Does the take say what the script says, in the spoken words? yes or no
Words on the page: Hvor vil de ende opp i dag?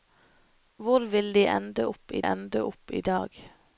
no